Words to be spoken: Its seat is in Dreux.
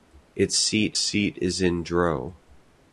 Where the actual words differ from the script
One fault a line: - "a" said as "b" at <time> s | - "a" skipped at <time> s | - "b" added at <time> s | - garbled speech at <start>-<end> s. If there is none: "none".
- "seat" added at 1.0 s